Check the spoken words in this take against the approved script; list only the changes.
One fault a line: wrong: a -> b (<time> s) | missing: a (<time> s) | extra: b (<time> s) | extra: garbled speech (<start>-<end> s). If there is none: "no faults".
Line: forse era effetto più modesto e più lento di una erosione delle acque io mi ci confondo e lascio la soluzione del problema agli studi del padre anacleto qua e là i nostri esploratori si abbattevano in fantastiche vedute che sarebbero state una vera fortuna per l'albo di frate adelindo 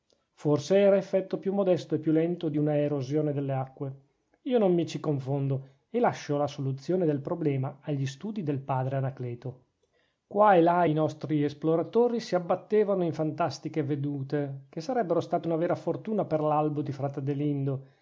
extra: non (4.6 s)